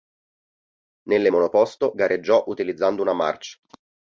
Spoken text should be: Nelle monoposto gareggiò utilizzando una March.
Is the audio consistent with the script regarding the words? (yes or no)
yes